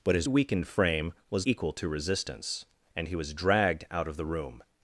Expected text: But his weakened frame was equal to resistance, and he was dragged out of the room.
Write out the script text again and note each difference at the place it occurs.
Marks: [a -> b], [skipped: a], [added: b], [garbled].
But his weakened frame was equal to resistance, and he was dragged out of the room.